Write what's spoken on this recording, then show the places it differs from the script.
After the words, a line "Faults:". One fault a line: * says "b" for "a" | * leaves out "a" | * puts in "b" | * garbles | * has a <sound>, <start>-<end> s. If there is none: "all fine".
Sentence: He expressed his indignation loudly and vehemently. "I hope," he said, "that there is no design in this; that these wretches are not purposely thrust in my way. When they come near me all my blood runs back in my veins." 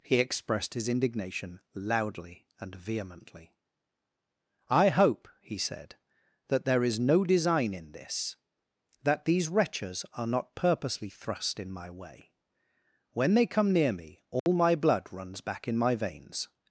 He expressed his indignation loudly and vehemently. "I hope," he said, "that there is no design in this; that these wretches are not purposely thrust in my way. When they come near me all my blood runs back in my veins."
Faults:
* has a dropout, 14.4-14.5 s